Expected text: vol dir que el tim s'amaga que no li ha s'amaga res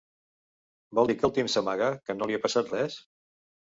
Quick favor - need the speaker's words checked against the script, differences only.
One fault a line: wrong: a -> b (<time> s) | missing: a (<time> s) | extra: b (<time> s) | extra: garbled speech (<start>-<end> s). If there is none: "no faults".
wrong: s'amaga -> passat (2.5 s)